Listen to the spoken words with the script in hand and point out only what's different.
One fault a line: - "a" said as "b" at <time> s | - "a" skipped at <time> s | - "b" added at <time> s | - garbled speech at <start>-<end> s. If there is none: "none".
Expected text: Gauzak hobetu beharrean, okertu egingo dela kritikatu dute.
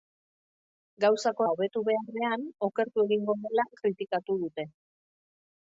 none